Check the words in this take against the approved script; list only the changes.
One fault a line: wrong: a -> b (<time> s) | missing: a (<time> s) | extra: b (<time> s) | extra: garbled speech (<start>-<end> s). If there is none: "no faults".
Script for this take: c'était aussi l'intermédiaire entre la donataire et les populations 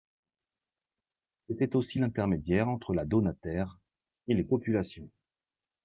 no faults